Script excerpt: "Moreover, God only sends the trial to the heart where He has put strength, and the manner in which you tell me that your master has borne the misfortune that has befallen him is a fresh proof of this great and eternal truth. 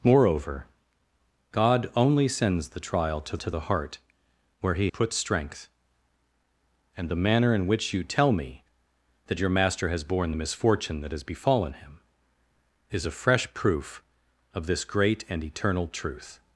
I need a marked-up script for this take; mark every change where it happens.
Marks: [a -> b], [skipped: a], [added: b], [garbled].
"Moreover, God only sends the trial to [added: to] the heart where He [skipped: has] put strength, and the manner in which you tell me that your master has borne the misfortune that has befallen him is a fresh proof of this great and eternal truth.